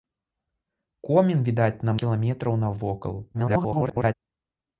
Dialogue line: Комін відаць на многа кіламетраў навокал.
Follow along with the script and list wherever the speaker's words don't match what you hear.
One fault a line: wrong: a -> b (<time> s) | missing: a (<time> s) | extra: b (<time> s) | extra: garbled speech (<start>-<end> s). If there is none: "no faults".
missing: многа (2.0 s)
extra: garbled speech (3.3-4.1 s)